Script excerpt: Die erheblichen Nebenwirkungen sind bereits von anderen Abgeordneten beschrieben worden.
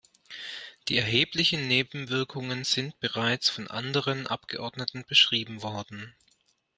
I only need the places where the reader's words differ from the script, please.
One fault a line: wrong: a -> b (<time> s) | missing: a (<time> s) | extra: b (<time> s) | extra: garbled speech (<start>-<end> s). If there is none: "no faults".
no faults